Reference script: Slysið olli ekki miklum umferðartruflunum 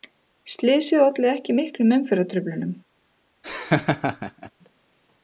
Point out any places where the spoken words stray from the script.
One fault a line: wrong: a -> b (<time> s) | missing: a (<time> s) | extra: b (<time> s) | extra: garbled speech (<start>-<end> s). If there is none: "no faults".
no faults